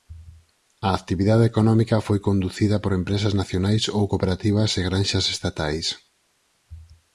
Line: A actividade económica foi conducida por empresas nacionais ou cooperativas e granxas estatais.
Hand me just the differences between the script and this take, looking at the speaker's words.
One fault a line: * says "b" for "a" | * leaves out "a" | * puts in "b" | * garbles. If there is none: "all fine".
all fine